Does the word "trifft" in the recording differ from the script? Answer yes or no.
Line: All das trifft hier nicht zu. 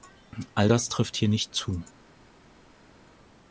no